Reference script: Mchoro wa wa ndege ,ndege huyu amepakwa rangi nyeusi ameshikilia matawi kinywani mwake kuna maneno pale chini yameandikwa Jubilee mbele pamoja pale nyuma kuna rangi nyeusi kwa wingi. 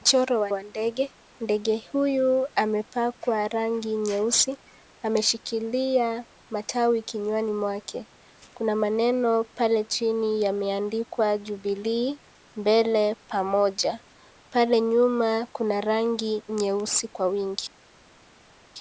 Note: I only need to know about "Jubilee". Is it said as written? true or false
true